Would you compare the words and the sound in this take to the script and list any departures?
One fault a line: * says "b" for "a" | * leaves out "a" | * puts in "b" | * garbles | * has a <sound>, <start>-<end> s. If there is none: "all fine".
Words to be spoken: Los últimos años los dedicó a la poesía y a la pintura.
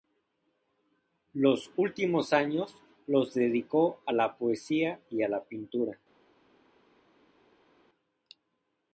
all fine